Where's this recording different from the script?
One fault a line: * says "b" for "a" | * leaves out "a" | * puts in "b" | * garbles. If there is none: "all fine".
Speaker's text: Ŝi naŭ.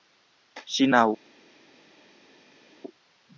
all fine